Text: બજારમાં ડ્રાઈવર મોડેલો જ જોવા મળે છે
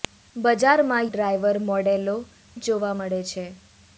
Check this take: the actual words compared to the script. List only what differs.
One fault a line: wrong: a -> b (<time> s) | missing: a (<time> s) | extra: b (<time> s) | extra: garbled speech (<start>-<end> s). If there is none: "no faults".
no faults